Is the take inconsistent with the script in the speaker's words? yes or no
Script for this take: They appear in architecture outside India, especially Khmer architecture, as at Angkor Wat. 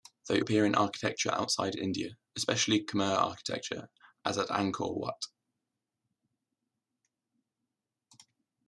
no